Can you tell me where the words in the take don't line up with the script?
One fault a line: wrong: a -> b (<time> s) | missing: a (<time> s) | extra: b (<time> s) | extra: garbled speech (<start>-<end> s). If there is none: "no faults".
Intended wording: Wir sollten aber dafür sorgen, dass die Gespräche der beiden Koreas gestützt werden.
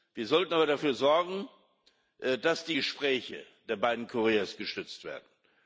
no faults